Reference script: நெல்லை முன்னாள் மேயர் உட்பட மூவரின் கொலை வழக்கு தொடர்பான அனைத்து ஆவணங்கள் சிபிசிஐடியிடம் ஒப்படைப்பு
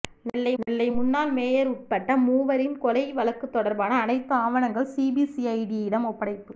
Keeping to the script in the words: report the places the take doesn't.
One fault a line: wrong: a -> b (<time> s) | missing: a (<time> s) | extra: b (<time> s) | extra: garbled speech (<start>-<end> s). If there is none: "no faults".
extra: நெல்லை (0.6 s)